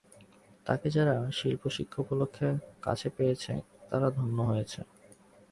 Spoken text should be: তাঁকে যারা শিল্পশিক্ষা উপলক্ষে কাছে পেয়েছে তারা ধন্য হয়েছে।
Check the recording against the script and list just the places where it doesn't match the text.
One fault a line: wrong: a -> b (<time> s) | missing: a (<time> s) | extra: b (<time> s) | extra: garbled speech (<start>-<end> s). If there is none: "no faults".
no faults